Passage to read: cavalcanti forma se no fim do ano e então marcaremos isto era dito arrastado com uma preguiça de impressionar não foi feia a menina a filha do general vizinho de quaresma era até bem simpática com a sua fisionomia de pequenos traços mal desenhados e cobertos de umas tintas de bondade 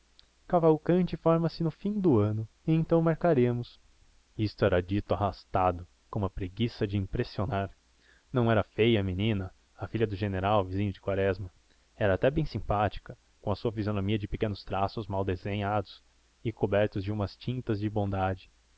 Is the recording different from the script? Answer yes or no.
yes